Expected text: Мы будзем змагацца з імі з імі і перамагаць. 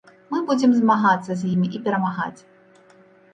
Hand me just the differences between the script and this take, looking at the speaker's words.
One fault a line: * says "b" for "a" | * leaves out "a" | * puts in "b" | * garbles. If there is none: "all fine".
* leaves out "з імі"